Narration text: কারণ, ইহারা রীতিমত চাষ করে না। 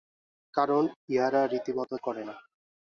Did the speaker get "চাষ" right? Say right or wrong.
wrong